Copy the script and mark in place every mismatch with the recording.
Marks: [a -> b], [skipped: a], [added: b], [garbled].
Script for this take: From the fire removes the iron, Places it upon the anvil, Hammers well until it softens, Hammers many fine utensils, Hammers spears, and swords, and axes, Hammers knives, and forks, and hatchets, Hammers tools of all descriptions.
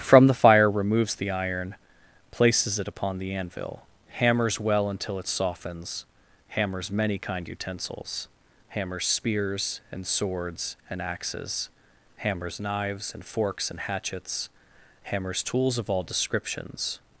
From the fire removes the iron, Places it upon the anvil, Hammers well until it softens, Hammers many [fine -> kind] utensils, Hammers spears, and swords, and axes, Hammers knives, and forks, and hatchets, Hammers tools of all descriptions.